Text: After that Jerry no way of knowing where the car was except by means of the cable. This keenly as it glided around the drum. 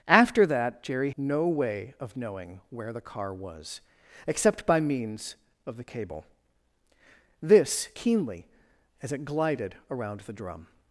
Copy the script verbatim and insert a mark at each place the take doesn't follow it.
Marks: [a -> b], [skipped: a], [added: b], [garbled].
After that Jerry no way of knowing where the car was except by means of the cable. This keenly as it glided around the drum.